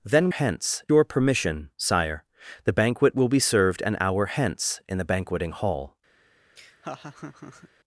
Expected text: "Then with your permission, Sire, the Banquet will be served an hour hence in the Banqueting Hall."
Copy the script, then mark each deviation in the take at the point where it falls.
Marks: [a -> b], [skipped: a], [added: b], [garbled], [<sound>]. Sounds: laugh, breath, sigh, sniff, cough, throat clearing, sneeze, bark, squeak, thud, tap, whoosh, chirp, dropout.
"Then [with -> hence] your permission, Sire, the Banquet will be served an hour hence in the Banqueting Hall." [laugh]